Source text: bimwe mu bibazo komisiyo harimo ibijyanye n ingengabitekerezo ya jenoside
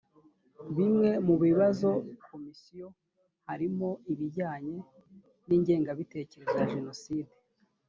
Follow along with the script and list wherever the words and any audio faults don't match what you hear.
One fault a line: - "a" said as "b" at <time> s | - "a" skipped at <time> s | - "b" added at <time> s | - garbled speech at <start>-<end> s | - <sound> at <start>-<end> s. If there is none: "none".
none